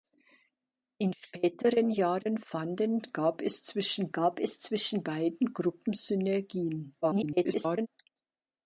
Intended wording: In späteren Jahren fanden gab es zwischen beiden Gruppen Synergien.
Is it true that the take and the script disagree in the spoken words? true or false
true